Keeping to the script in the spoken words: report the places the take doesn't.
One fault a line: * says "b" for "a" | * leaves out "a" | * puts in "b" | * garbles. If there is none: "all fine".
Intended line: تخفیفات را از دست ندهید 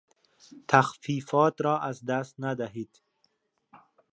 all fine